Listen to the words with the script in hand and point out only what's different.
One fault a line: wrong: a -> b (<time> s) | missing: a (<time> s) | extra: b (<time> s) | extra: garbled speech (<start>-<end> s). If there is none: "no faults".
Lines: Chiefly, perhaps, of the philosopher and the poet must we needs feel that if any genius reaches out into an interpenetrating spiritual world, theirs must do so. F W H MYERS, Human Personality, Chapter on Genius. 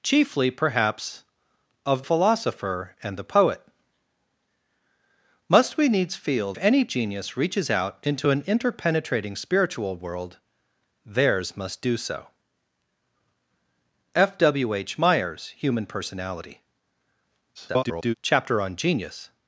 missing: the (2.0 s)
missing: that if (6.5 s)
extra: garbled speech (17.5-18.1 s)